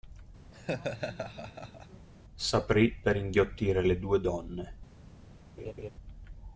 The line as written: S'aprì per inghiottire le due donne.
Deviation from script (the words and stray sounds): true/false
true